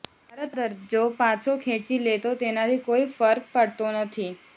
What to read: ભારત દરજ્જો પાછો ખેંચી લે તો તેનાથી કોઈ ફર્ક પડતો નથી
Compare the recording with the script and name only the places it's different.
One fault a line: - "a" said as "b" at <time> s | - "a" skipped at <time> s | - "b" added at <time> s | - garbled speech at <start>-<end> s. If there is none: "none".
none